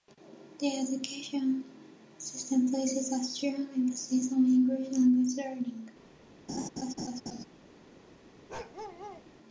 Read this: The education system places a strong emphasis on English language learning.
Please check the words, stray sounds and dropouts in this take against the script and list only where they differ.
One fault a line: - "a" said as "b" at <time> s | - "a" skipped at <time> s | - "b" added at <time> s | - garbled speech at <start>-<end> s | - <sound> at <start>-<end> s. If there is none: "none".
- laugh at 6.5-7.5 s
- bark at 8.5-9.3 s